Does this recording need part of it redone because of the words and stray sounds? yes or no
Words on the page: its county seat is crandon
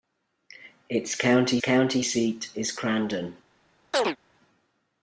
yes